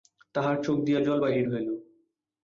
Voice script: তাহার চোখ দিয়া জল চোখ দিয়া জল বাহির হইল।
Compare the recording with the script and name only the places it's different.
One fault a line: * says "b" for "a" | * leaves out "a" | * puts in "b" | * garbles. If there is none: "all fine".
* leaves out "চোখ দিয়া জল"